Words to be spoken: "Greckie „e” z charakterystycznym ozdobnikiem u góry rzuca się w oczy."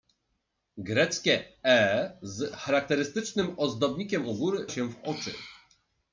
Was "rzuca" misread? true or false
true